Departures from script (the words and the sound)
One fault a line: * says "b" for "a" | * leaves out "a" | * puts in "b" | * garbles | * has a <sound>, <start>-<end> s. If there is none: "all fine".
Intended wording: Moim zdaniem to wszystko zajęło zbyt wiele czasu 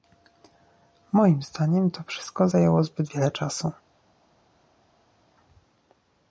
all fine